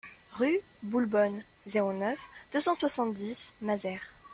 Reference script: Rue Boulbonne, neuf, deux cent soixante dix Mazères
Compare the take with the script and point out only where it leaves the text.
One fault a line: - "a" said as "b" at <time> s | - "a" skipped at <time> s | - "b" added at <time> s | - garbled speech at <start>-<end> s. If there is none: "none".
- "zéro" added at 1.7 s